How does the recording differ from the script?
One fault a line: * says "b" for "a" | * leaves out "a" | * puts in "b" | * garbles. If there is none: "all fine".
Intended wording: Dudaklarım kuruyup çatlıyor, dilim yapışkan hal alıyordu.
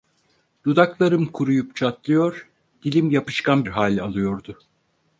all fine